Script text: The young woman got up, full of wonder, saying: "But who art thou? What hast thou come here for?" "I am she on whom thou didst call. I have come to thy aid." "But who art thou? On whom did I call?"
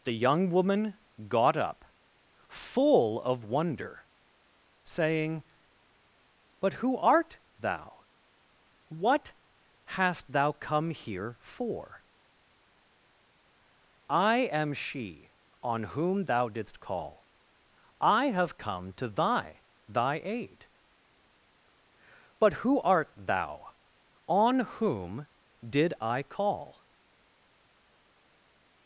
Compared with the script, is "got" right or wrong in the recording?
right